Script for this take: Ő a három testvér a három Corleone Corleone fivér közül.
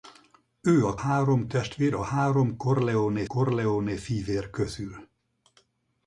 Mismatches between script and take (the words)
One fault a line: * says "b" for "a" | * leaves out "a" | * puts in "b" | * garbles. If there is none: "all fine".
all fine